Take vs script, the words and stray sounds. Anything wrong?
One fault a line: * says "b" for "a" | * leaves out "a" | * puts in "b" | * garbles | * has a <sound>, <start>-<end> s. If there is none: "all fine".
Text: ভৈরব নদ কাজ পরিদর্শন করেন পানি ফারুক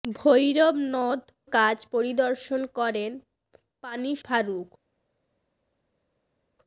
all fine